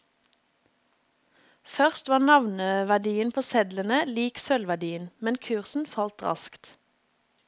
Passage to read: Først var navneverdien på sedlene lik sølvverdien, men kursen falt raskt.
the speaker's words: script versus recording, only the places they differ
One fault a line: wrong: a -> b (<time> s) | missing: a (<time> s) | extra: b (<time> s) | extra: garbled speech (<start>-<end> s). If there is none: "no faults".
no faults